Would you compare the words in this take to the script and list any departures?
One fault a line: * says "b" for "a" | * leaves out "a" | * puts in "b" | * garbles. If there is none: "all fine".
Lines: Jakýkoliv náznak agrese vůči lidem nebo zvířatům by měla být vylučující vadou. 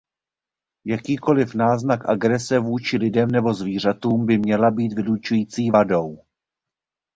all fine